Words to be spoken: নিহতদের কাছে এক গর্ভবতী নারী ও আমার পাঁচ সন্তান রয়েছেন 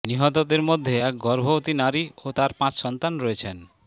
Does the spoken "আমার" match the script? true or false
false